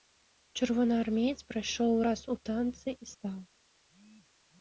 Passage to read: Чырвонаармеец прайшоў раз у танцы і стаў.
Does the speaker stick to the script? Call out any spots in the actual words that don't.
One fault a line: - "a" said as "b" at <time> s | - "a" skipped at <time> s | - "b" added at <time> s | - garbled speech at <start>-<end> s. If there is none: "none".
none